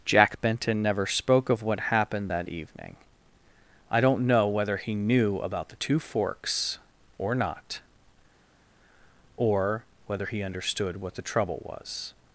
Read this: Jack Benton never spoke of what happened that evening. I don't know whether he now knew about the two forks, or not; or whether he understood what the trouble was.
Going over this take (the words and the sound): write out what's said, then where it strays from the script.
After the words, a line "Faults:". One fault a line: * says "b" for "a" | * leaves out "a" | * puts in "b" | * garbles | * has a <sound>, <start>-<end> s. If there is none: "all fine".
Jack Benton never spoke of what happened that evening. I don't know whether he knew about the two forks, or not; or whether he understood what the trouble was.
Faults:
* leaves out "now"